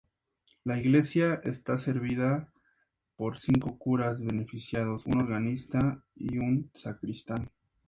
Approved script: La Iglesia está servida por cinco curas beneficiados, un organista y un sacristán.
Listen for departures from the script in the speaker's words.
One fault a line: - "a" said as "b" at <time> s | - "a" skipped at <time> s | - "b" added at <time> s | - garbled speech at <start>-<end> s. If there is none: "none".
none